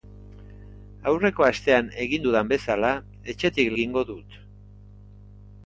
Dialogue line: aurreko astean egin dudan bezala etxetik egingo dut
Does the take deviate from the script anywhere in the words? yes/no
no